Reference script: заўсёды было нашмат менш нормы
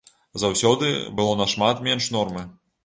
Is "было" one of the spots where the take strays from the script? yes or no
no